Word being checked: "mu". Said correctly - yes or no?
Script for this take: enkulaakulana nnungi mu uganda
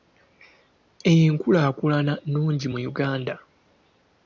yes